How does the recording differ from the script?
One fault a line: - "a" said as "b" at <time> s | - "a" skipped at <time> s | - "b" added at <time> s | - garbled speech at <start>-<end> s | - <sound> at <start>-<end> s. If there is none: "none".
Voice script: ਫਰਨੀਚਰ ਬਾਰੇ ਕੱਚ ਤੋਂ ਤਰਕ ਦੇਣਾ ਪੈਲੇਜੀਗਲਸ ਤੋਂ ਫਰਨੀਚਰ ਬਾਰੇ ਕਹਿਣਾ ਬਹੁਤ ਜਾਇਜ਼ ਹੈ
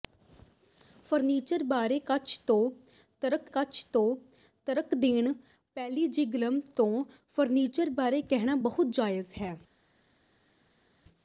- "ਕੱਚ ਤੋਂ ਤਰਕ" added at 3.5 s